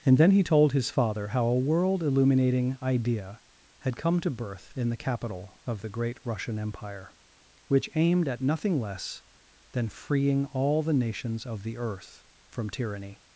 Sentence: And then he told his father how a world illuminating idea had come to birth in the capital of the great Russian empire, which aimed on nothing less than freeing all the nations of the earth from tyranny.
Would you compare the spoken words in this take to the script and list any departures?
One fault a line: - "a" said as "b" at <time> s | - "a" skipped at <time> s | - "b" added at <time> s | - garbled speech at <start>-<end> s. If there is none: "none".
- "on" said as "at" at 8.3 s